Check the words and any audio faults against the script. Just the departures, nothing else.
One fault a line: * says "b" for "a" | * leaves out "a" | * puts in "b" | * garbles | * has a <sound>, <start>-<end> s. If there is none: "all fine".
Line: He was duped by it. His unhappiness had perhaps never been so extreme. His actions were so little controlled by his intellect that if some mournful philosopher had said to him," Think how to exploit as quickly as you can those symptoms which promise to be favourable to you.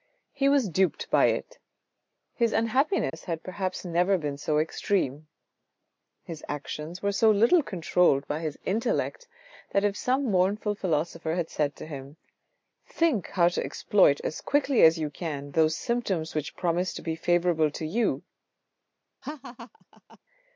* has a dropout, 3.1-3.1 s
* has a laugh, 19.2-20.2 s